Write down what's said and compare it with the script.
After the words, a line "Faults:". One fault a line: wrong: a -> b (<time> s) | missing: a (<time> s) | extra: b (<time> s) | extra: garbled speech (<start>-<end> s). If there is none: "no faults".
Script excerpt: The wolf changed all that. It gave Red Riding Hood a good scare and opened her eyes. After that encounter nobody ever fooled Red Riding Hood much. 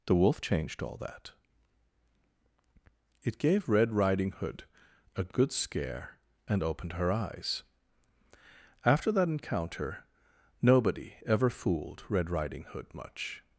The wolf changed all that. It gave Red Riding Hood a good scare and opened her eyes. After that encounter nobody ever fooled Red Riding Hood much.
Faults:
no faults